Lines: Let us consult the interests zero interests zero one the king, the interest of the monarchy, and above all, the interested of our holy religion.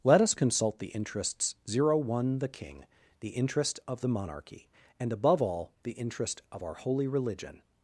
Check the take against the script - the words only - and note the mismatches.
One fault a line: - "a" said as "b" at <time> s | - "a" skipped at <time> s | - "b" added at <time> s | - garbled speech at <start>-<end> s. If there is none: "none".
- "interests zero" skipped at 1.9 s
- "interested" said as "interest" at 5.9 s